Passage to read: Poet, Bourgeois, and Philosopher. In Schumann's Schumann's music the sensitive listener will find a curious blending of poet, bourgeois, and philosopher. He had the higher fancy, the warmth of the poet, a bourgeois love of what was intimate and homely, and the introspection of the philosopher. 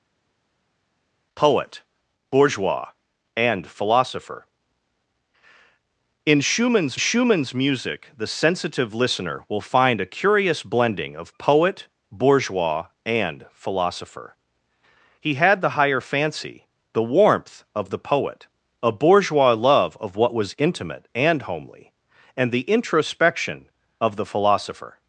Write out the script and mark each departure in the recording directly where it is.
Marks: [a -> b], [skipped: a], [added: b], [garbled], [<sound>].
Poet, Bourgeois, and Philosopher. In Schumann's Schumann's music the sensitive listener will find a curious blending of poet, bourgeois, and philosopher. He had the higher fancy, the warmth of the poet, a bourgeois love of what was intimate and homely, and the introspection of the philosopher.